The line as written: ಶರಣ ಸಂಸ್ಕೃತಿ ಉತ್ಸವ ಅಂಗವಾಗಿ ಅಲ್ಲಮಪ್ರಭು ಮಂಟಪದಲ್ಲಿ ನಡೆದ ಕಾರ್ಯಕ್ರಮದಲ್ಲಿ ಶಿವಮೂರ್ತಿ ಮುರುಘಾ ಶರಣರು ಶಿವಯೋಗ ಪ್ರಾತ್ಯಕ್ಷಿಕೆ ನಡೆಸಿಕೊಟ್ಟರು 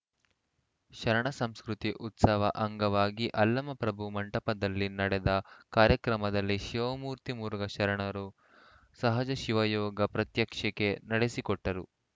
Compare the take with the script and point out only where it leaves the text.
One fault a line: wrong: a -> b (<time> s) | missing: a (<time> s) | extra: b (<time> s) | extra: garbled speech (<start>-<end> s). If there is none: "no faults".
extra: ಸಹಜ (9.0 s)